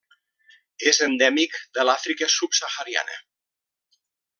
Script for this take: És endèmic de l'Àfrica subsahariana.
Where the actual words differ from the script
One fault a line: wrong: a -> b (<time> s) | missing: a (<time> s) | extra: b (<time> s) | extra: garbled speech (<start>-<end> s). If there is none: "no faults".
no faults